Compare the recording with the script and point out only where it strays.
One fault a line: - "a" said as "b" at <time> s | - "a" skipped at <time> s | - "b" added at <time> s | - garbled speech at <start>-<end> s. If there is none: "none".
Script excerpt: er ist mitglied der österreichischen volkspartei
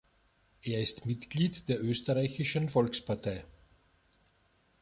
none